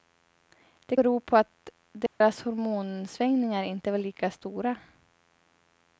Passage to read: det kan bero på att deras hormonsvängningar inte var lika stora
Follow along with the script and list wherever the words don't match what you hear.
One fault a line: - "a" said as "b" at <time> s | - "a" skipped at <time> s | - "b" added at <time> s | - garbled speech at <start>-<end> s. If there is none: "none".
- "kan" skipped at 1.0 s